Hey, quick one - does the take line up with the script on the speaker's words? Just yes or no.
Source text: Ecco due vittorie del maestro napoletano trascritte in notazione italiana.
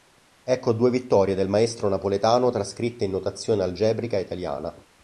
no